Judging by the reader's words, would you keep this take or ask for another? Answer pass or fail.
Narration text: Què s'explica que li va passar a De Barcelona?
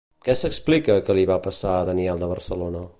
fail